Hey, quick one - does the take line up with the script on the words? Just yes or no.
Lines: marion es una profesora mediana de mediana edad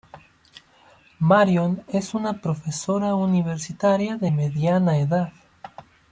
no